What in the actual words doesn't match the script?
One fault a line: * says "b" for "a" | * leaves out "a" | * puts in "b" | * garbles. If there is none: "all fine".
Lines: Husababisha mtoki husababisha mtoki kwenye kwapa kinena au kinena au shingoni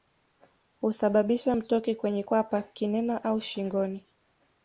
* leaves out "husababisha mtoki"
* leaves out "kinena au"